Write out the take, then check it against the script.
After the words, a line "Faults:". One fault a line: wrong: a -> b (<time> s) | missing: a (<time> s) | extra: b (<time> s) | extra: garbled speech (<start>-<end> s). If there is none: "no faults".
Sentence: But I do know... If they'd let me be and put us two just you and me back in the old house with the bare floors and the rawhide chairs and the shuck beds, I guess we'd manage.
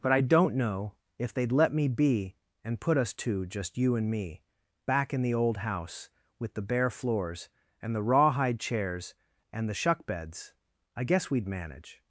But I don't know... If they'd let me be and put us two just you and me back in the old house with the bare floors and the rawhide chairs and the shuck beds, I guess we'd manage.
Faults:
wrong: do -> don't (0.2 s)